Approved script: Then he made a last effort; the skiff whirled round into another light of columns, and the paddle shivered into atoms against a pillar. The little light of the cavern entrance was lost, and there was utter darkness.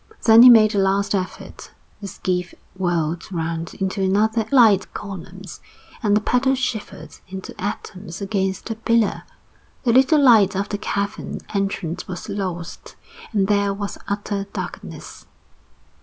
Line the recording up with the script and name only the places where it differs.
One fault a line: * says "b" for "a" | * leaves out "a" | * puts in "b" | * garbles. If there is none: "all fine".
all fine